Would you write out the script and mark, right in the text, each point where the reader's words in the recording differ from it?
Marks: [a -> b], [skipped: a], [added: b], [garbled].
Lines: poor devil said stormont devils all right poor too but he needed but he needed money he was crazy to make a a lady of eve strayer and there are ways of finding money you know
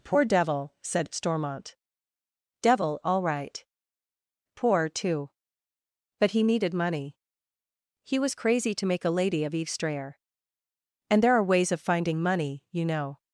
poor devil said stormont [devils -> devil] all right poor too but he needed [skipped: but he needed] money he was crazy to make a [skipped: a] lady of eve strayer and there are ways of finding money you know